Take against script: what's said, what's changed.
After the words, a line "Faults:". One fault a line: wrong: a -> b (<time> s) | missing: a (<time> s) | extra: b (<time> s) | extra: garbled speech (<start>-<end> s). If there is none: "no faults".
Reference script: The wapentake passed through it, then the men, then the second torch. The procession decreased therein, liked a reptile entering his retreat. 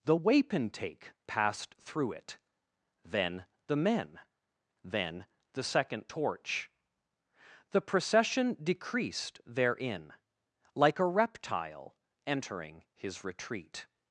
The wapentake passed through it, then the men, then the second torch. The procession decreased therein, like a reptile entering his retreat.
Faults:
wrong: liked -> like (10.7 s)